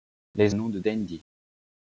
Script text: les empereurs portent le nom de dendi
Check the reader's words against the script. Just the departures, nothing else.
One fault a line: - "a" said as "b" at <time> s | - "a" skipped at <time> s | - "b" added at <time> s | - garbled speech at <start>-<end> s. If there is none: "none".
- "empereurs portent le" skipped at 0.6 s